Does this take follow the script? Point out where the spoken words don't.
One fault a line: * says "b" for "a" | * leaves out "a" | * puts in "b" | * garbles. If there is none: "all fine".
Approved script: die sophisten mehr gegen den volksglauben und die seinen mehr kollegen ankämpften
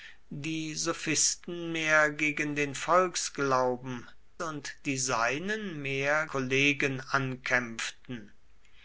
all fine